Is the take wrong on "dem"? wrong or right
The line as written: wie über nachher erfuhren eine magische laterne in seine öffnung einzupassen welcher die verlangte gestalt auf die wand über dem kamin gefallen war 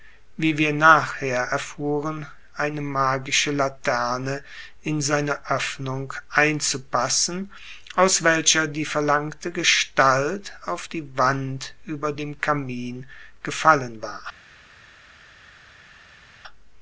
right